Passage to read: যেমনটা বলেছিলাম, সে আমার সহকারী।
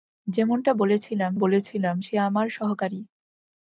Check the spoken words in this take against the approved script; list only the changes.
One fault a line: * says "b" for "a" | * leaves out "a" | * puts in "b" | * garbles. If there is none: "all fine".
* puts in "বলেছিলাম"